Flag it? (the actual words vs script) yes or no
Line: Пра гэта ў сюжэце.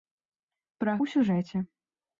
yes